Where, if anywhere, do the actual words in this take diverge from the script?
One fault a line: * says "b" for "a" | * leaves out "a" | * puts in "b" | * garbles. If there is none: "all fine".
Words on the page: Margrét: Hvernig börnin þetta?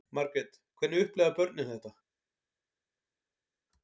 * puts in "upplifa"